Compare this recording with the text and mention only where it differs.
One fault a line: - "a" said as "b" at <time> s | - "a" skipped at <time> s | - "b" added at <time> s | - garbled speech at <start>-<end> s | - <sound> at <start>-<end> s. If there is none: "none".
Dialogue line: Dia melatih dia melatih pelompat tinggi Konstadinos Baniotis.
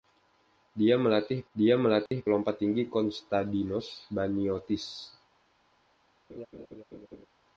- dropout at 2.1-2.1 s
- laugh at 6.3-7.3 s